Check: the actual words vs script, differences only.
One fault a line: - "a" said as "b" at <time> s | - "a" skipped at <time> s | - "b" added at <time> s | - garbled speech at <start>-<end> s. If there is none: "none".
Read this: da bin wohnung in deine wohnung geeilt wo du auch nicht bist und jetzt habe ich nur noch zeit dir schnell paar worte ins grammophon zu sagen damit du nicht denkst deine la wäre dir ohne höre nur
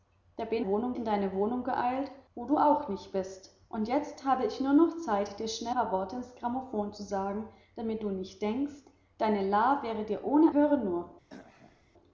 none